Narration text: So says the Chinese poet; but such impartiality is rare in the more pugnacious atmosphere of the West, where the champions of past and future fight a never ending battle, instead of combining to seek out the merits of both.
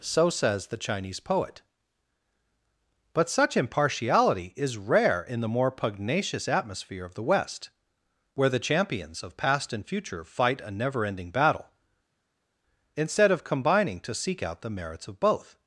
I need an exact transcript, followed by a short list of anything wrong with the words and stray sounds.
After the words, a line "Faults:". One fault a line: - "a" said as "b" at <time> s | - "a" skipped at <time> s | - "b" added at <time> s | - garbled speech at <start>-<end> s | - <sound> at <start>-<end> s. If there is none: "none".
So says the Chinese poet; but such impartiality is rare in the more pugnacious atmosphere of the West, where the champions of past and future fight a never ending battle, instead of combining to seek out the merits of both.
Faults:
none